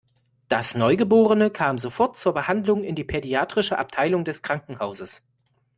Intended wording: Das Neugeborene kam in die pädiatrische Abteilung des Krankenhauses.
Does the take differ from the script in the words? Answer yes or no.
yes